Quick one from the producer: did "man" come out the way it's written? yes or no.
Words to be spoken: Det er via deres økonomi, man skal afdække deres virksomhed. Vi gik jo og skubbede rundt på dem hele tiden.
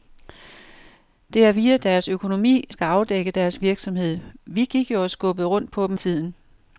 no